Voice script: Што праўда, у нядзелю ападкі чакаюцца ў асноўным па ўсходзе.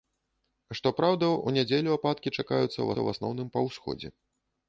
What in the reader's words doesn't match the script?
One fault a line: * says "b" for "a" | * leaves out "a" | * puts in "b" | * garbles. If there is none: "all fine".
* puts in "ў"